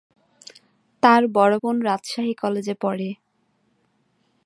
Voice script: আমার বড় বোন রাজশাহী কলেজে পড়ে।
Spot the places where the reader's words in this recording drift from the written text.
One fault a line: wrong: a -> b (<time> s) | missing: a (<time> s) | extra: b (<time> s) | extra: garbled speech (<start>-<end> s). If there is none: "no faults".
wrong: আমার -> তার (1.0 s)